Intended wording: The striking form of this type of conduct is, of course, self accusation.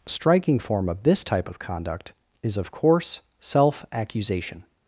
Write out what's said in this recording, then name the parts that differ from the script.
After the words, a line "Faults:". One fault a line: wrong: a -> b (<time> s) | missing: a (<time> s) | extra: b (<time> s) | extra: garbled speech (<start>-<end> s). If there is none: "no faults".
The striking form of this type of conduct is, of course, self accusation.
Faults:
no faults